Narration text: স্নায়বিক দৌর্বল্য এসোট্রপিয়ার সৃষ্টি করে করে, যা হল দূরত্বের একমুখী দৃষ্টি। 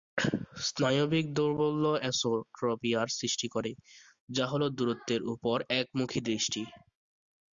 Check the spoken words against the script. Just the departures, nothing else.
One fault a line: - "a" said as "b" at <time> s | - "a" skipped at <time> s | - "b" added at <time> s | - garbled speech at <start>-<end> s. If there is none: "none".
- "করে" skipped at 3.7 s
- "উপর" added at 5.3 s